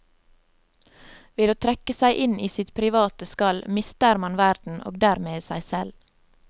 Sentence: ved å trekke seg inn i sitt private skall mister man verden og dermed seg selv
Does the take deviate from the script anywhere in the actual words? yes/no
no